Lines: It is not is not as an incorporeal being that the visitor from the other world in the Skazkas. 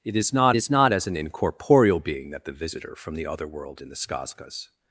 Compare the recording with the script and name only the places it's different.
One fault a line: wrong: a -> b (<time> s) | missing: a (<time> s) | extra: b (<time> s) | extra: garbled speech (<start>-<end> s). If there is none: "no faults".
no faults